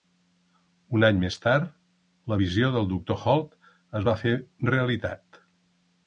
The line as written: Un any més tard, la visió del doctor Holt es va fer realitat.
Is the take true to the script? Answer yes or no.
yes